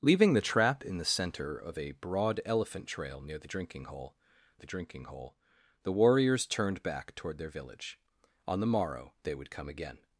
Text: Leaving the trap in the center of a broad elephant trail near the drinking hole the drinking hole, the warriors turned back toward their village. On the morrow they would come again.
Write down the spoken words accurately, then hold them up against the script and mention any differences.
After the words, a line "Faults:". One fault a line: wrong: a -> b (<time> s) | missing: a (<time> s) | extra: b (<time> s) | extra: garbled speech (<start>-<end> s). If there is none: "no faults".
Leaving the trap in the center of a broad elephant trail near the drinking hole the drinking hole, the warriors turned back toward their village. On the morrow they would come again.
Faults:
no faults